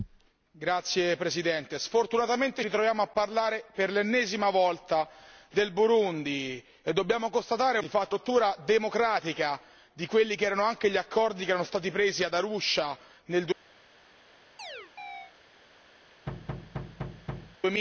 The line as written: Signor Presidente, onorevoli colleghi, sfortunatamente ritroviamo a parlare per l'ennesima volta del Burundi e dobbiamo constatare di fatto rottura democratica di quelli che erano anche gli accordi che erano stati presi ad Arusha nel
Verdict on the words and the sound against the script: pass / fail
fail